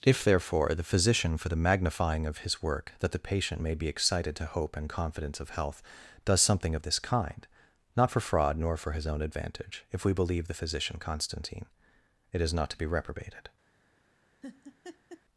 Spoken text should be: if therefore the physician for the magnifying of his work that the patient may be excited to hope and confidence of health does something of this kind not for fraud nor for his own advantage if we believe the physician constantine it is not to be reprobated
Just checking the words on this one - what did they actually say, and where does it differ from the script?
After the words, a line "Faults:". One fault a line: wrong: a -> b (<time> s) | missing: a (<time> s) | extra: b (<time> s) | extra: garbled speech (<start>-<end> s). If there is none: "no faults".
if therefore the physician for the magnifying of his work that the patient may be excited to hope and confidence of health does something of this kind not for fraud nor for his own advantage if we believe the physician constantine it is not to be reprobated
Faults:
no faults